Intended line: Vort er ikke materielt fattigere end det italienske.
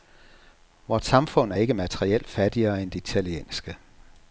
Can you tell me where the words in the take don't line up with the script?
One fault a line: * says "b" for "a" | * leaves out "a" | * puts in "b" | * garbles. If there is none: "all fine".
* puts in "samfund"